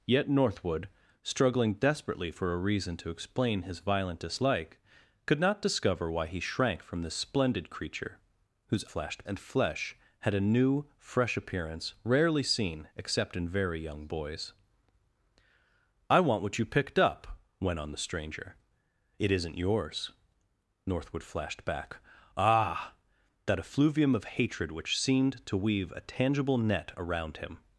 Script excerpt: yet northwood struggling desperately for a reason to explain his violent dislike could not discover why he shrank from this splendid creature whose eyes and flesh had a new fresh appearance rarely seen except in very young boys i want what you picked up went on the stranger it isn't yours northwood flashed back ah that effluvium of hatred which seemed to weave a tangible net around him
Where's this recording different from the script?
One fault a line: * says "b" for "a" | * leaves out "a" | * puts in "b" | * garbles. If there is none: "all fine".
* says "flashed" for "eyes"